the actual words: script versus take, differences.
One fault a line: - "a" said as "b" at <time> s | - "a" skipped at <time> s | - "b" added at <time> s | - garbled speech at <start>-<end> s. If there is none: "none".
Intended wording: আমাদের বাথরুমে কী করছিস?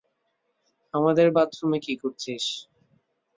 none